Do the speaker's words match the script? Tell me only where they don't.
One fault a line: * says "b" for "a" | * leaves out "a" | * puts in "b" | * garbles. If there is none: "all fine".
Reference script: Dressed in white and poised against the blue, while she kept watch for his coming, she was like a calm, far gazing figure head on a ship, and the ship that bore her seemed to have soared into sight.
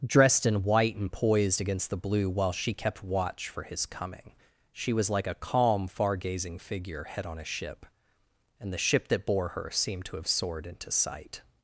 all fine